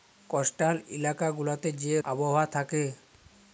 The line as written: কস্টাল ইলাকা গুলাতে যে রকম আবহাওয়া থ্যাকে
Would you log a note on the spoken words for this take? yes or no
yes